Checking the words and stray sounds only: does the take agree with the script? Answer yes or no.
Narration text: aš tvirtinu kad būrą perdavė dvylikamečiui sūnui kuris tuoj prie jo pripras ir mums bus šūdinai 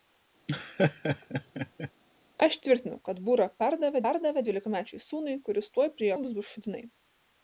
no